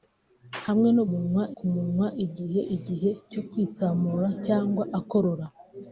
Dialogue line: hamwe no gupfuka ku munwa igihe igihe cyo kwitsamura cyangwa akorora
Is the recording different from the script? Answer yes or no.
yes